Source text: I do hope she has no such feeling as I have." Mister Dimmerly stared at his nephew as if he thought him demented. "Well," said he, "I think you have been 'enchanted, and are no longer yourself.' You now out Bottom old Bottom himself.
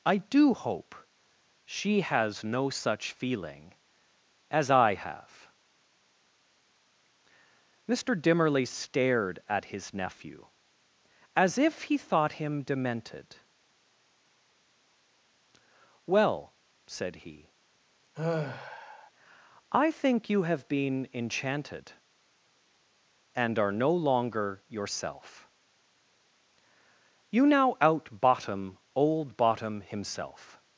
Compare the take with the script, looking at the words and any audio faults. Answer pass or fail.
fail